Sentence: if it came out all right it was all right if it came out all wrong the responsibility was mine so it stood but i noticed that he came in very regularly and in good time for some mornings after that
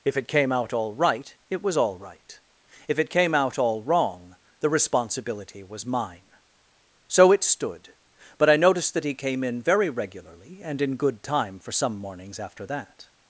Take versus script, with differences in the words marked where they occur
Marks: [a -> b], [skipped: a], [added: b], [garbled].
if it came out all right it was all right if it came out all wrong the responsibility was mine so it stood but i noticed that he came in very regularly and in good time for some mornings after that